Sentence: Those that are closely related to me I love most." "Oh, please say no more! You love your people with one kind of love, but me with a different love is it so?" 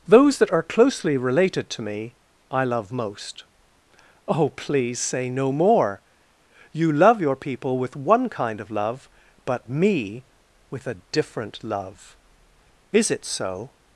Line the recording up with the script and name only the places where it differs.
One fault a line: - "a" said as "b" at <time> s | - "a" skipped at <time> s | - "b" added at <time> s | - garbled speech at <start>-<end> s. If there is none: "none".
none